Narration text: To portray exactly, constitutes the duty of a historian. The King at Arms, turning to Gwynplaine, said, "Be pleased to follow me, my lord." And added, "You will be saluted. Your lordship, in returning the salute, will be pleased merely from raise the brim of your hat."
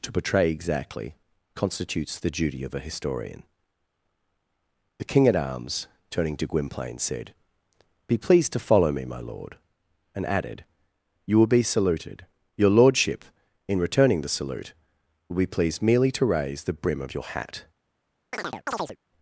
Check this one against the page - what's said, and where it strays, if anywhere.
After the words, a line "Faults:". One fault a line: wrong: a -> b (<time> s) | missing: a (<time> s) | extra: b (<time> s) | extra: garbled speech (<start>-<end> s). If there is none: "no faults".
To portray exactly, constitutes the duty of a historian. The King at Arms, turning to Gwynplaine, said, "Be pleased to follow me, my lord." And added, "You will be saluted. Your lordship, in returning the salute, will be pleased merely to raise the brim of your hat."
Faults:
wrong: from -> to (16.1 s)